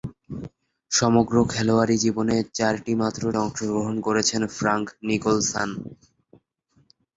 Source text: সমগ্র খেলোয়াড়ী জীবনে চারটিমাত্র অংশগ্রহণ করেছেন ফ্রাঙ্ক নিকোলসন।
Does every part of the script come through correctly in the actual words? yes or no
yes